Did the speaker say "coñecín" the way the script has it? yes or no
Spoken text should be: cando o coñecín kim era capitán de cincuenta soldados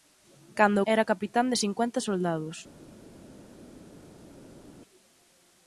no